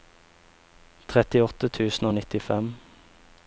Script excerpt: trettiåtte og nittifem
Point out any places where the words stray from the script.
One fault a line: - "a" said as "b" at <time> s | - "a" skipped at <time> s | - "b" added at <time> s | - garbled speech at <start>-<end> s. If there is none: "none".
- "tusen" added at 1.8 s